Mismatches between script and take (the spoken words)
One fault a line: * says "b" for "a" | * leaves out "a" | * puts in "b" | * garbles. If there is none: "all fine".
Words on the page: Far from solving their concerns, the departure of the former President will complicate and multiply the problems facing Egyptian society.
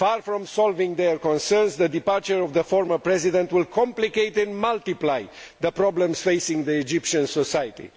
all fine